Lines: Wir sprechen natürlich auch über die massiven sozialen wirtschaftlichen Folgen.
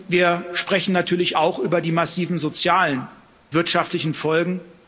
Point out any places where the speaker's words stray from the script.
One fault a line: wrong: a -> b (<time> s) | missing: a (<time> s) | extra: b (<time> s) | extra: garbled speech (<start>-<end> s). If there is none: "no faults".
no faults